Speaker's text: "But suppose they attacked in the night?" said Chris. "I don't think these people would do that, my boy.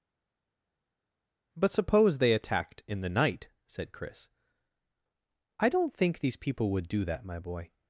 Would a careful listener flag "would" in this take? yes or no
no